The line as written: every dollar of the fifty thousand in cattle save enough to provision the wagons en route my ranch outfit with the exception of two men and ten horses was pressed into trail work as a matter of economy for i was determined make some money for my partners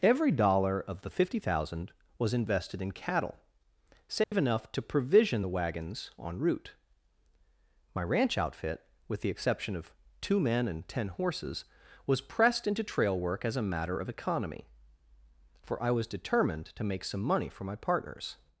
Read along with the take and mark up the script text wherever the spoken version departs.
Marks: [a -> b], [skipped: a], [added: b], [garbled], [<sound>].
every dollar of the fifty thousand [added: was invested] in cattle save [dropout] enough to provision the wagons en route my ranch outfit with the exception of two men and ten horses was pressed into trail work as a matter of economy for i was determined [added: to] make some money for my partners